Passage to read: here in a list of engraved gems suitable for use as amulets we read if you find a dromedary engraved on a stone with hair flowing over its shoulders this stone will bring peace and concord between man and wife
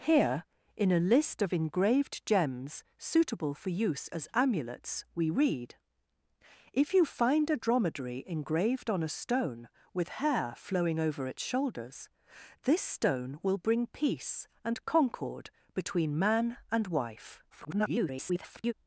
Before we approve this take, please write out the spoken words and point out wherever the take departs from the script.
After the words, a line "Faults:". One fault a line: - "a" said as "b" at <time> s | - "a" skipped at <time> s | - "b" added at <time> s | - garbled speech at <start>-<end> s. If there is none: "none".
here in a list of engraved gems suitable for use as amulets we read if you find a dromedary engraved on a stone with hair flowing over its shoulders this stone will bring peace and concord between man and wife [garbled]
Faults:
- garbled speech at 17.5-18.7 s